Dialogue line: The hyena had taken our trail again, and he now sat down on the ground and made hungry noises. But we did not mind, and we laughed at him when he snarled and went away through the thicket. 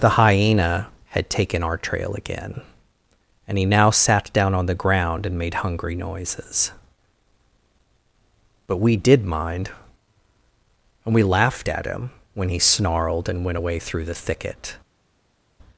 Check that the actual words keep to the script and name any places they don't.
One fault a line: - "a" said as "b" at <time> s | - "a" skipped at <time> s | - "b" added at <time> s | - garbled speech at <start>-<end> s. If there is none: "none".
- "not" skipped at 9.2 s